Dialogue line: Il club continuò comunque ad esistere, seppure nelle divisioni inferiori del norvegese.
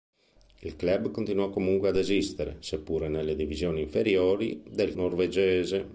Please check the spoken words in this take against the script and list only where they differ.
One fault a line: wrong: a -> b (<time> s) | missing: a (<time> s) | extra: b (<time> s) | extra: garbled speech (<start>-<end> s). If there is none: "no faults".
no faults